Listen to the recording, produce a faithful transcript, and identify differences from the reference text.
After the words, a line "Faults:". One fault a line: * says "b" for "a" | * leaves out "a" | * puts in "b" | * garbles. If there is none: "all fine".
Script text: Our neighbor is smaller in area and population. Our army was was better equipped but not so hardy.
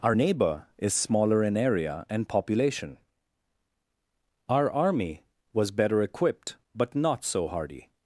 Our neighbor is smaller in area and population. Our army was better equipped but not so hardy.
Faults:
* leaves out "was"